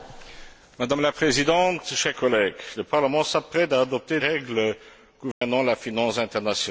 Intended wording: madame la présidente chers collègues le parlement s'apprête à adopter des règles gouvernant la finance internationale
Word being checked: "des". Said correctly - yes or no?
no